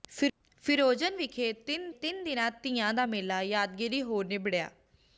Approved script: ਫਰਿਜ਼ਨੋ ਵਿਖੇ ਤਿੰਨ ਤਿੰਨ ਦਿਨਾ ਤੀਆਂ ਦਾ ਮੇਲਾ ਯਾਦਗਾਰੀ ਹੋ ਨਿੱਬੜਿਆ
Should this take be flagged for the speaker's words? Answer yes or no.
no